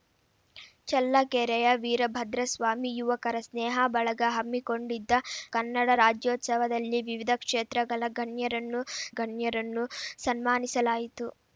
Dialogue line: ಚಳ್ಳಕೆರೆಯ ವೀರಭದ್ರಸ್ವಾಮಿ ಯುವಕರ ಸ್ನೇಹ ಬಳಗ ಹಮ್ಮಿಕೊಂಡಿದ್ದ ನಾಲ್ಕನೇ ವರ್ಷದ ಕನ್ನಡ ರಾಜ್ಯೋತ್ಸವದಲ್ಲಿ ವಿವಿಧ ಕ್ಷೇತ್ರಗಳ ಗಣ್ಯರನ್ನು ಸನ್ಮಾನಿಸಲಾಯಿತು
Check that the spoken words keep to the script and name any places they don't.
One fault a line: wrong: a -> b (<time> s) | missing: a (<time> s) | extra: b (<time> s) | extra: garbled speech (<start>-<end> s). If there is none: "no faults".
missing: ನಾಲ್ಕನೇ ವರ್ಷದ (5.2 s)
extra: ಗಣ್ಯರನ್ನು (9.2 s)